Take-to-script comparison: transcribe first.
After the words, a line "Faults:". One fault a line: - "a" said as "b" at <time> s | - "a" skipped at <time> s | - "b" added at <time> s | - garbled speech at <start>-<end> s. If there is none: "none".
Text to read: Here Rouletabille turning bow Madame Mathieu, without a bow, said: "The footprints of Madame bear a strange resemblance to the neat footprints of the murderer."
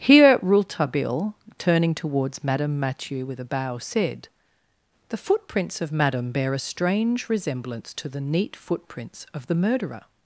Here Rouletabille turning towards Madame Mathieu, with a bow, said: "The footprints of Madame bear a strange resemblance to the neat footprints of the murderer."
Faults:
- "bow" said as "towards" at 1.9 s
- "without" said as "with" at 3.2 s